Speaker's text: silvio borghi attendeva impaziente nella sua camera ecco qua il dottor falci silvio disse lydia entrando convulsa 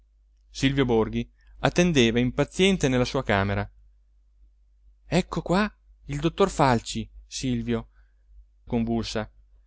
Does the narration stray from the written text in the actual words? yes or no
yes